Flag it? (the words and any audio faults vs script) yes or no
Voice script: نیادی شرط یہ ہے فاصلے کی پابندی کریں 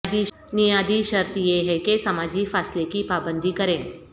yes